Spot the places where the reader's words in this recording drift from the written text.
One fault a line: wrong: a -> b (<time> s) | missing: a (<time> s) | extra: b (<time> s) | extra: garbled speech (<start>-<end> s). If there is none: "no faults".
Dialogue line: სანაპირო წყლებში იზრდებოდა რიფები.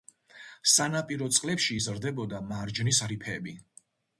extra: მარჯნის (2.5 s)